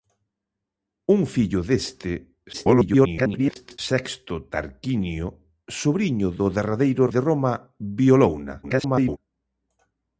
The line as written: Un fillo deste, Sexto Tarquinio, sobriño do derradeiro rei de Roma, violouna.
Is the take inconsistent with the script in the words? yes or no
yes